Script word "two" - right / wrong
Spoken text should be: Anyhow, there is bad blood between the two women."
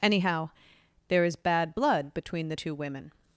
right